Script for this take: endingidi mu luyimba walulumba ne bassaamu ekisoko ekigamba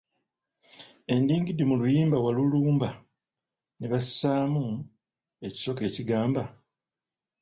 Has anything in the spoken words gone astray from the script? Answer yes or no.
no